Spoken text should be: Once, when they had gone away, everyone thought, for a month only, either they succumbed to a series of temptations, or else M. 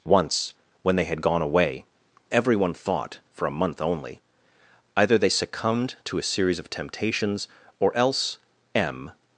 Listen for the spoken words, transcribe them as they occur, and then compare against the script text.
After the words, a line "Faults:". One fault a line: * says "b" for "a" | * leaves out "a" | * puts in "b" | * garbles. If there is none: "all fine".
Once, when they had gone away, everyone thought, for a month only, either they succumbed to a series of temptations, or else M.
Faults:
all fine